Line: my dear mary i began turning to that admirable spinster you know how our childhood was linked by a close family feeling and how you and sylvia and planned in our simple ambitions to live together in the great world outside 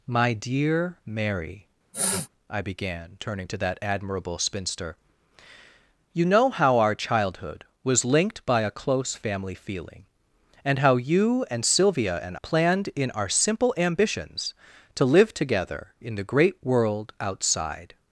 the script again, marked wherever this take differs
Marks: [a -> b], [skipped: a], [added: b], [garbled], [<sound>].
my dear mary [sniff] i began turning to that admirable spinster you know how our childhood was linked by a close family feeling and how you and sylvia and planned in our simple ambitions to live together in the great world outside